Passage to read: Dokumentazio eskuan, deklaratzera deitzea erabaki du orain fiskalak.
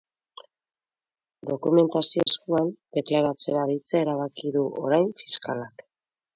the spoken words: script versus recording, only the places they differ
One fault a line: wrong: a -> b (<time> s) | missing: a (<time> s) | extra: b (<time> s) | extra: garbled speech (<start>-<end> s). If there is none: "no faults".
no faults